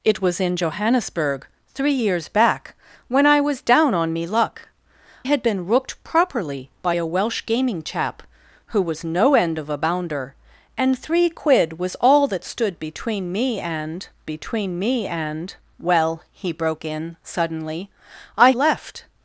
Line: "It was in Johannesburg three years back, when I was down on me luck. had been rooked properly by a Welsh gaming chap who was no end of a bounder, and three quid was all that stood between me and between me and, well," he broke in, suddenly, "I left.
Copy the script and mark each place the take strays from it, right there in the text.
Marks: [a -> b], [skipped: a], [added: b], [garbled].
"It was in Johannesburg three years back, when I was down on me luck. had been rooked properly by a Welsh gaming chap who was no end of a bounder, and three quid was all that stood between me and between me and, well," he broke in, suddenly, "I left.